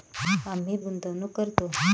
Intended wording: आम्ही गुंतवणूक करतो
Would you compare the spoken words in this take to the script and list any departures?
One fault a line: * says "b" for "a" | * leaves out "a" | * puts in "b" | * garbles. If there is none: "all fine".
all fine